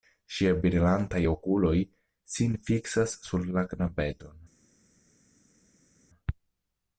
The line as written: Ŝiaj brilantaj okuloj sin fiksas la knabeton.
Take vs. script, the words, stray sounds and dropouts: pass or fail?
fail